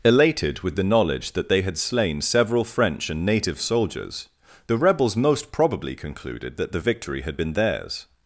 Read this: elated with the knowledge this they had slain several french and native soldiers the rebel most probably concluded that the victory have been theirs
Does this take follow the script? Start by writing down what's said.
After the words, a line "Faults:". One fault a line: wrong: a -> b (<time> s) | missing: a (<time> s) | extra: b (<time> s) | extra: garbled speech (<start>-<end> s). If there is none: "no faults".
elated with the knowledge that they had slain several french and native soldiers the rebels most probably concluded that the victory had been theirs
Faults:
wrong: this -> that (1.3 s)
wrong: rebel -> rebels (4.8 s)
wrong: have -> had (7.2 s)